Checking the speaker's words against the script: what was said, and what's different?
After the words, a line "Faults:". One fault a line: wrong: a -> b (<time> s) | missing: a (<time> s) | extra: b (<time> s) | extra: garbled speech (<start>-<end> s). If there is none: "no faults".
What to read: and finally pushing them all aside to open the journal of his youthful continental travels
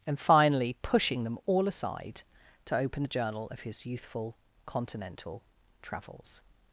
and finally pushing them all aside to open the journal of his youthful continental travels
Faults:
no faults